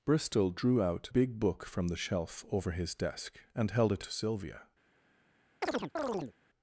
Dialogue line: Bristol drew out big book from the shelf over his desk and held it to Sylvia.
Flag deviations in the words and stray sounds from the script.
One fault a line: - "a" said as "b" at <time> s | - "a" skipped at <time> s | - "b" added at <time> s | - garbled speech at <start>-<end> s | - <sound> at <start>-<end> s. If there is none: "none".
- chirp at 5.6-6.3 s